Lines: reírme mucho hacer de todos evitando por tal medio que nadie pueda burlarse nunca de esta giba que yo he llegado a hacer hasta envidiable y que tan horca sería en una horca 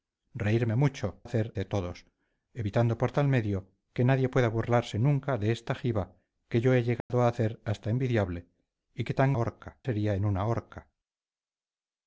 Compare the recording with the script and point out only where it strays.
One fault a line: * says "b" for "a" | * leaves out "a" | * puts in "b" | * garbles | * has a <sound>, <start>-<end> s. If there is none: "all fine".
* has a dropout, 7.0-7.1 s